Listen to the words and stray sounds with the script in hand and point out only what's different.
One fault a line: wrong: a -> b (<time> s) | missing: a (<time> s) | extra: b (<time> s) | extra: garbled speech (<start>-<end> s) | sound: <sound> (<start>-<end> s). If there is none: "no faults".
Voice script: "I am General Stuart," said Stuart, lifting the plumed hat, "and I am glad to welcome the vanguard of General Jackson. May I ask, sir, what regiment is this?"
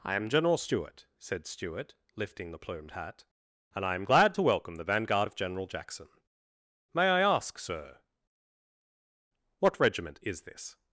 no faults